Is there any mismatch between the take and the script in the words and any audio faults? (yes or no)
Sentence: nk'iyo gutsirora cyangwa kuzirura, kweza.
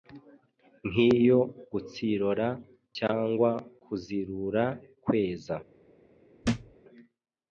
yes